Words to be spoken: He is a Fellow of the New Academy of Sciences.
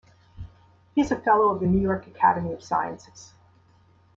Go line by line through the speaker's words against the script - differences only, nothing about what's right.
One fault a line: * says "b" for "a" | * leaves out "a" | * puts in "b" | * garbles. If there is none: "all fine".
* puts in "York"